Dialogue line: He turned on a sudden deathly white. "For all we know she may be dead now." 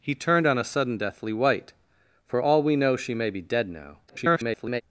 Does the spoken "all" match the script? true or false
true